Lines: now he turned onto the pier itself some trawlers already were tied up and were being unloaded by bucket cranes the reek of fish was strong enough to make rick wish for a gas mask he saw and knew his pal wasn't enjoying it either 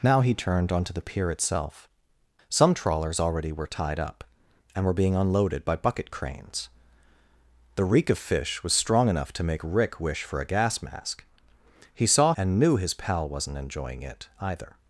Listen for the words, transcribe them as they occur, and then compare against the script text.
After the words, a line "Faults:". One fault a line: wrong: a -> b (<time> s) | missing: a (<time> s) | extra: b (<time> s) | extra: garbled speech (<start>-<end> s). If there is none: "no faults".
now he turned onto the pier itself some trawlers already were tied up and were being unloaded by bucket cranes the reek of fish was strong enough to make rick wish for a gas mask he saw and knew his pal wasn't enjoying it either
Faults:
no faults